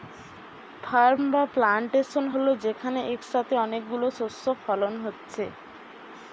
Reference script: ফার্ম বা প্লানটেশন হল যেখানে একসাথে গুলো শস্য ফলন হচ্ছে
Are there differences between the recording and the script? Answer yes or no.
yes